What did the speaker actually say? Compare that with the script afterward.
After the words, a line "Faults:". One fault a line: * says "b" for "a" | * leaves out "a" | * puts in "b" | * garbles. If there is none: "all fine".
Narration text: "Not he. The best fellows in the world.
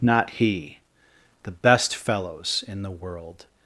"Not he. The best fellows in the world.
Faults:
all fine